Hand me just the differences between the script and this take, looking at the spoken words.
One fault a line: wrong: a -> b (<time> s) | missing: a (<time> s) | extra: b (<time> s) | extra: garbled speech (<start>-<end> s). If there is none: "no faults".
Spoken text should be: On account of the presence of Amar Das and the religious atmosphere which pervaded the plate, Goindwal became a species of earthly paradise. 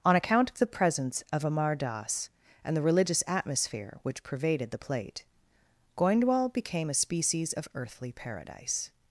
no faults